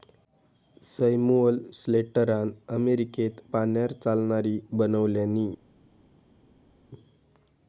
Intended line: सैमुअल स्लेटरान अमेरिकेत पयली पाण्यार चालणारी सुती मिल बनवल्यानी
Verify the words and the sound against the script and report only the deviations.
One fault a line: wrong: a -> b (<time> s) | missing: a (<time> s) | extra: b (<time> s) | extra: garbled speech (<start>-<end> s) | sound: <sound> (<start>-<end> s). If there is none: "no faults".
missing: पयली (3.4 s)
missing: सुती मिल (4.6 s)